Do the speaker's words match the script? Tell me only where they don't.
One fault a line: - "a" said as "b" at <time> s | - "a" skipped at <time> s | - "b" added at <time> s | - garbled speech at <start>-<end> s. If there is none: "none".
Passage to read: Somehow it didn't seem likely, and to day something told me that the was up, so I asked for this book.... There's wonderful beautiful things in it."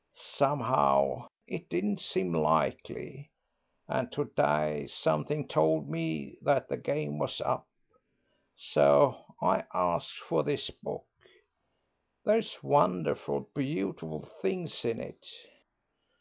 - "game" added at 6.8 s